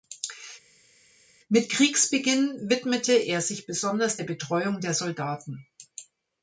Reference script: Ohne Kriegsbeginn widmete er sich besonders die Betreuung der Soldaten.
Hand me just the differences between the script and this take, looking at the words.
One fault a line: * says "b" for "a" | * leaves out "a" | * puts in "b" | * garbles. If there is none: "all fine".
* says "Mit" for "Ohne"
* says "der" for "die"